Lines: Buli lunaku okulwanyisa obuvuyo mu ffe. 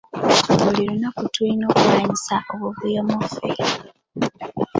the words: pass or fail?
fail